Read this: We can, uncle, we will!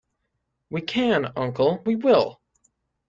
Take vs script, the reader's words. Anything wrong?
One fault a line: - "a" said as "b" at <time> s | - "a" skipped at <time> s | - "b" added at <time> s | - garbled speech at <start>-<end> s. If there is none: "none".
none